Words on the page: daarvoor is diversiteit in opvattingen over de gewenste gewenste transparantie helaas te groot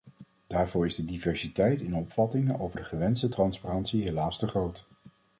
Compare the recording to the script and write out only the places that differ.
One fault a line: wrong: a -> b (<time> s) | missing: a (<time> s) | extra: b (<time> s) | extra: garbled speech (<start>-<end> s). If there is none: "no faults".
extra: de (0.9 s)
missing: gewenste (3.3 s)